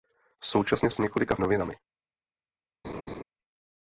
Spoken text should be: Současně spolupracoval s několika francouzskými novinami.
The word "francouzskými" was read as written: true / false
false